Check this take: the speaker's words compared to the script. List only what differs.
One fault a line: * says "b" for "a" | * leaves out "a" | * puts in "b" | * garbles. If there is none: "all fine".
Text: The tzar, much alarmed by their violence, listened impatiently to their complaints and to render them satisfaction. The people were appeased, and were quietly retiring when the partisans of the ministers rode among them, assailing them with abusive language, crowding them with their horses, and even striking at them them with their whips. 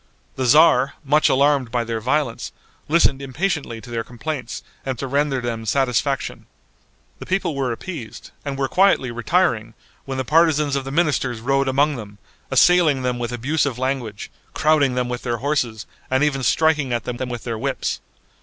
all fine